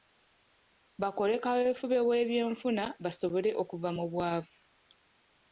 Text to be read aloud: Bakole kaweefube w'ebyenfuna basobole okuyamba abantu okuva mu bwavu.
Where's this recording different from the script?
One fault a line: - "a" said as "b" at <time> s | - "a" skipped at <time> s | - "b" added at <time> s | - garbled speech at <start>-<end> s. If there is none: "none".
- "okuyamba abantu" skipped at 3.5 s